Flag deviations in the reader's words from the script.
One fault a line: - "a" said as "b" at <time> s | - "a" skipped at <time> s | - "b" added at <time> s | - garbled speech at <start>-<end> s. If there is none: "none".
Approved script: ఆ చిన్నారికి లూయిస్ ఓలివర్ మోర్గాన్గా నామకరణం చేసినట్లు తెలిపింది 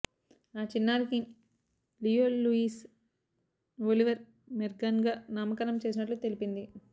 - "లియో" added at 2.0 s